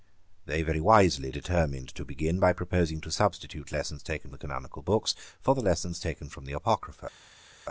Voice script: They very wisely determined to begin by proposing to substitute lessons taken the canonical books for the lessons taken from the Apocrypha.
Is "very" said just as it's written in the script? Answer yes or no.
yes